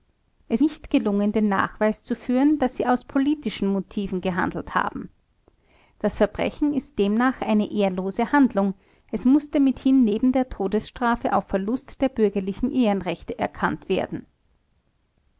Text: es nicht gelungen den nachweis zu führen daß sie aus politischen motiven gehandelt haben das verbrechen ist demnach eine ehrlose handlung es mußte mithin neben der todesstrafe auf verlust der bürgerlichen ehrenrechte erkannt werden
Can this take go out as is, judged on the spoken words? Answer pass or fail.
pass